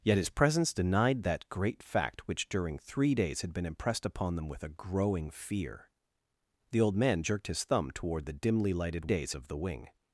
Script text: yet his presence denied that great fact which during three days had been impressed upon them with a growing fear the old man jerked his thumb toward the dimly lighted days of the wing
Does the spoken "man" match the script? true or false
true